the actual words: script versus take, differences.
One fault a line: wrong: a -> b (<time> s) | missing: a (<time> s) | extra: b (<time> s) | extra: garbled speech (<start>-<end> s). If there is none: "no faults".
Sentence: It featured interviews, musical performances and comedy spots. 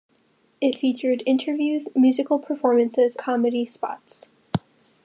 missing: and (3.2 s)